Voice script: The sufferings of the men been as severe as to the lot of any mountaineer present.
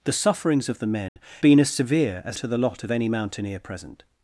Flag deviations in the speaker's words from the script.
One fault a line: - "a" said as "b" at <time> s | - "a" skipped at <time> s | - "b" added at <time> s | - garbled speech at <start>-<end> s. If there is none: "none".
none